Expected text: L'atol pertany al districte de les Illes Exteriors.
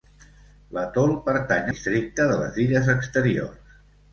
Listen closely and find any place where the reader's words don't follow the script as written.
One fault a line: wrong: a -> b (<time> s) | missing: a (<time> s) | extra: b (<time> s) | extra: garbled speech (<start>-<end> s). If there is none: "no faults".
missing: al (1.7 s)